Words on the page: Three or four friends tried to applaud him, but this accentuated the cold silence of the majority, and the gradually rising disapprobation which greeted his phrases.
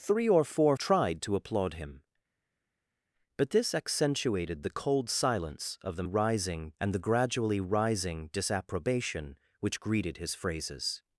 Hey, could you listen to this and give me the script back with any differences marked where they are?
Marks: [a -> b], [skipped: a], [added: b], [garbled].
Three or four [skipped: friends] tried to applaud him, but this accentuated the cold silence of the [majority, -> rising] and the gradually rising disapprobation which greeted his phrases.